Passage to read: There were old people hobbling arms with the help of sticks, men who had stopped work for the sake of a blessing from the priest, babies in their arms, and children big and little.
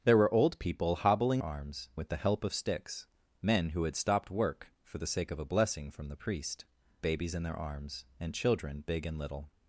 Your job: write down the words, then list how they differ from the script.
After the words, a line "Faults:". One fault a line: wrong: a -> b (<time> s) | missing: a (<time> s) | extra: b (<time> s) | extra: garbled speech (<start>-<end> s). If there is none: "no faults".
There were old people hobbling arms with the help of sticks, men who had stopped work for the sake of a blessing from the priest, babies in their arms, and children big and little.
Faults:
no faults